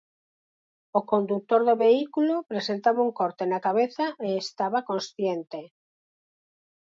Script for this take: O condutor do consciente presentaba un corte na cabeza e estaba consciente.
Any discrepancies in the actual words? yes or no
yes